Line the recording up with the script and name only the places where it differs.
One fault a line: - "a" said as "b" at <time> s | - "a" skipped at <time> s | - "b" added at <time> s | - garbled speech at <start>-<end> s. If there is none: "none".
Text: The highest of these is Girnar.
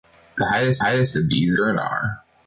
- "highest" added at 0.8 s
- "is" skipped at 1.5 s